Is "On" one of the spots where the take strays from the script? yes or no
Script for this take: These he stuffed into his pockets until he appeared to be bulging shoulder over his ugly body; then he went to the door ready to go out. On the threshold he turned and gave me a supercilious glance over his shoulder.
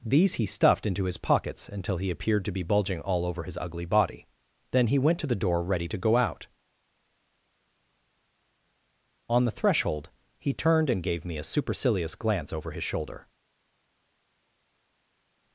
no